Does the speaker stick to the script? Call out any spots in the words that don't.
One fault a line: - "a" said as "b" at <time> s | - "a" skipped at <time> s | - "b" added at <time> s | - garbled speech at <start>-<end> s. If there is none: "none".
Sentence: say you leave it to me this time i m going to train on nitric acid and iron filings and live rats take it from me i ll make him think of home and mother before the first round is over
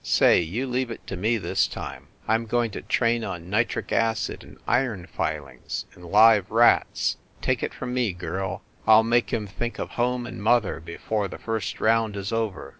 - "girl" added at 8.1 s